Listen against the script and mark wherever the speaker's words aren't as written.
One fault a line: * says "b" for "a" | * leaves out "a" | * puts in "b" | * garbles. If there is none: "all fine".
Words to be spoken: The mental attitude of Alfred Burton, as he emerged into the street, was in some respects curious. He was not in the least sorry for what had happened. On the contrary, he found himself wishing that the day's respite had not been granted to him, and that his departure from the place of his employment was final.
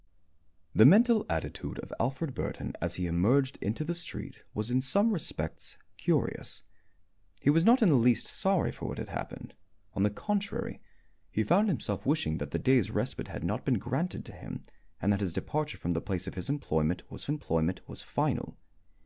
* puts in "employment was"